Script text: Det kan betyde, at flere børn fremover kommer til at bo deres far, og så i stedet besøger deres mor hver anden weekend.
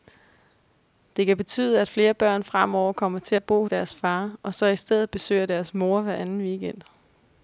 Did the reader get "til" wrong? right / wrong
right